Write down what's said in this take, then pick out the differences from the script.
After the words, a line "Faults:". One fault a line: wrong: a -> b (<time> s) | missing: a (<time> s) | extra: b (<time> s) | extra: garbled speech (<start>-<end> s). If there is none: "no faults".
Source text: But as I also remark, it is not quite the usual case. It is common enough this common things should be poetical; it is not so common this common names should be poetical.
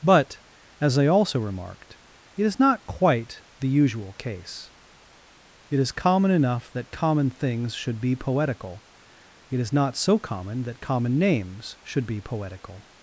But as I also remarked, it is not quite the usual case. It is common enough that common things should be poetical; it is not so common that common names should be poetical.
Faults:
wrong: remark -> remarked (1.4 s)
wrong: this -> that (6.7 s)
wrong: this -> that (10.6 s)